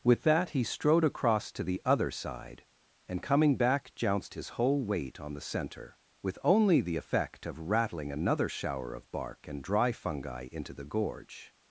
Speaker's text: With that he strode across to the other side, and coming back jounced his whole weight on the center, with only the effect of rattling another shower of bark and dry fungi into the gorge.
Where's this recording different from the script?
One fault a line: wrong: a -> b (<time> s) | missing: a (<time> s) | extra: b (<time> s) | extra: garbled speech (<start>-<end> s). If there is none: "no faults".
no faults